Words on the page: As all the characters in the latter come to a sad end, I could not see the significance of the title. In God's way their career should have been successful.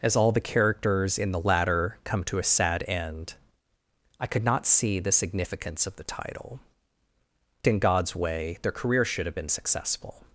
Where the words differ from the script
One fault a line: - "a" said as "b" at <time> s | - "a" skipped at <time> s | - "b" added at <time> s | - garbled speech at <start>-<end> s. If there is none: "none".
none